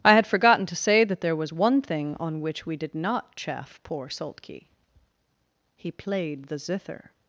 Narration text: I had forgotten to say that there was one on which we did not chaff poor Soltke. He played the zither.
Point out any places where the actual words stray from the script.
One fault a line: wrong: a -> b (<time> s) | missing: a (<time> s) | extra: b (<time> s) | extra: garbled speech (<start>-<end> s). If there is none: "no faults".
extra: thing (1.8 s)